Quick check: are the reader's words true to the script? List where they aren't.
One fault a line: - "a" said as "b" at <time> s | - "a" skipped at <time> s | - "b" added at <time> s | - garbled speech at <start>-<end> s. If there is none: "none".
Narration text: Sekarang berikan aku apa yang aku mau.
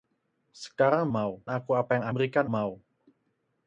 - "berikan" said as "mau" at 1.1 s
- "aku" said as "berikan" at 2.1 s